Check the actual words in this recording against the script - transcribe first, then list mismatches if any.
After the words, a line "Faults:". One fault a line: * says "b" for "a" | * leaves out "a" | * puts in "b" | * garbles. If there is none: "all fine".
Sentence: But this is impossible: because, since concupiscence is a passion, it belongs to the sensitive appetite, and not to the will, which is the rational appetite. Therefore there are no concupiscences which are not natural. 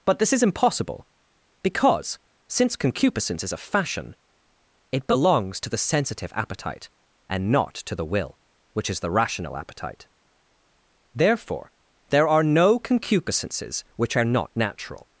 But this is impossible: because, since concupiscence is a fashion, it belongs to the sensitive appetite, and not to the will, which is the rational appetite. Therefore there are no concupiscences which are not natural.
Faults:
* says "fashion" for "passion"